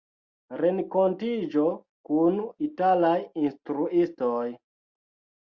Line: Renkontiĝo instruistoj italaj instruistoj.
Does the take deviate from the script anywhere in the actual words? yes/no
yes